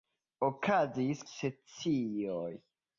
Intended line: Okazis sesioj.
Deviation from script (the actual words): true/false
false